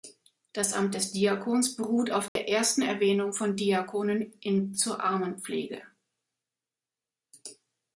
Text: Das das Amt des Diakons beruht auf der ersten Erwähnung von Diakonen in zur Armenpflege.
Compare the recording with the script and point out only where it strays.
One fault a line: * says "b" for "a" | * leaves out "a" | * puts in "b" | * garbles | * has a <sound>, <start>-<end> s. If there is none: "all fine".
* leaves out "das"
* has a dropout, 2.3-2.4 s